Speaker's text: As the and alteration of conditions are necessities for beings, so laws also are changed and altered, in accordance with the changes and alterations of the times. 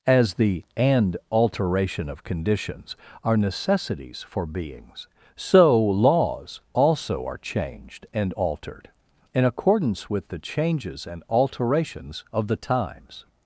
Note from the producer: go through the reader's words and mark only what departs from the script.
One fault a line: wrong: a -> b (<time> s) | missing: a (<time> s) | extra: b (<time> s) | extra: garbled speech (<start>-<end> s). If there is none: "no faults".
no faults